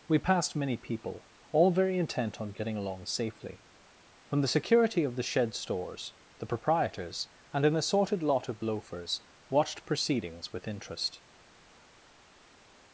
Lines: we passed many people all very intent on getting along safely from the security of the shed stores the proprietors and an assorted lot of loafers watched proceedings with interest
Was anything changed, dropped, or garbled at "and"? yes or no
no